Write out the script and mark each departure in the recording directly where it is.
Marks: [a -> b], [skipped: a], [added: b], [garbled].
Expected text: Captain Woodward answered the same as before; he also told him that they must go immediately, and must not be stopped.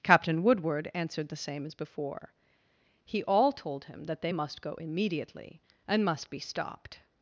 Captain Woodward answered the same as before; he [also -> all] told him that they must go immediately, and must [skipped: not] be stopped.